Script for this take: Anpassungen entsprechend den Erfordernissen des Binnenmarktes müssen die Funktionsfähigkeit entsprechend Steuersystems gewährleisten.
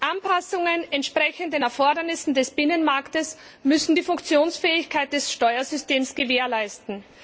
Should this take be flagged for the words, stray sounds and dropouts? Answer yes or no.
yes